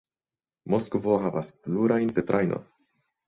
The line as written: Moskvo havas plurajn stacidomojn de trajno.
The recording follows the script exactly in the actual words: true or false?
false